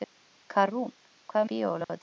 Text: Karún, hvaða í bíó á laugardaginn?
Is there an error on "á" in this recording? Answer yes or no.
no